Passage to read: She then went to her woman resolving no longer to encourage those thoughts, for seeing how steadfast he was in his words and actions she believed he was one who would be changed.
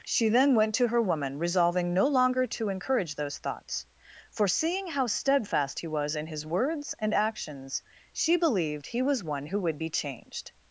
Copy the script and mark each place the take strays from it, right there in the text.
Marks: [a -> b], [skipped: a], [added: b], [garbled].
She then went to her woman resolving no longer to encourage those thoughts, for seeing how steadfast he was in his words and actions she believed he was one who would be changed.